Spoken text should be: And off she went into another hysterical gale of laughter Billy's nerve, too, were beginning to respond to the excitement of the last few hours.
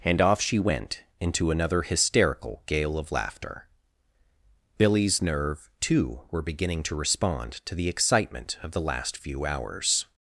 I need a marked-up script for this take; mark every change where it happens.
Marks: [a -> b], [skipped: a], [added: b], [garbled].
And off she went into another hysterical gale of laughter Billy's nerve, too, were beginning to respond to the excitement of the last few hours.